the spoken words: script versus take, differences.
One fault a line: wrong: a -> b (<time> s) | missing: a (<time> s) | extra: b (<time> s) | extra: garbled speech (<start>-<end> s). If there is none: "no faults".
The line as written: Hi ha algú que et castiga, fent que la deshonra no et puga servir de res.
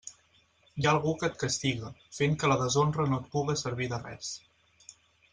no faults